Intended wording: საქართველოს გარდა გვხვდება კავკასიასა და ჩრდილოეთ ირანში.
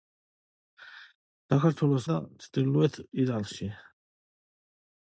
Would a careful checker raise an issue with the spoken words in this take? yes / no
yes